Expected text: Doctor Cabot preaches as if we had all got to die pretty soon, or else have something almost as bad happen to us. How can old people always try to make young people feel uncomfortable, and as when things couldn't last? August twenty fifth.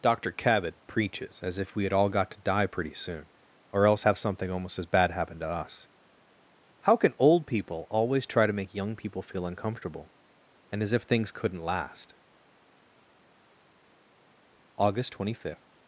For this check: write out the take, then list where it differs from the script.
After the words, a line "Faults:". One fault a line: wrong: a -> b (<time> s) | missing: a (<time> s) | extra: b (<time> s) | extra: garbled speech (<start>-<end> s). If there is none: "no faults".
Doctor Cabot preaches as if we had all got to die pretty soon, or else have something almost as bad happen to us. How can old people always try to make young people feel uncomfortable, and as if things couldn't last? August twenty fifth.
Faults:
wrong: when -> if (10.9 s)